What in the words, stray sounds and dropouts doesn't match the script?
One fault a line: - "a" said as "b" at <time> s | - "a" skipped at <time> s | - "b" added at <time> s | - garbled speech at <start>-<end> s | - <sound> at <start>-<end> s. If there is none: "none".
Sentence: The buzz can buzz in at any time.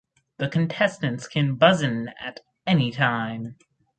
- "buzz" said as "contestants" at 0.5 s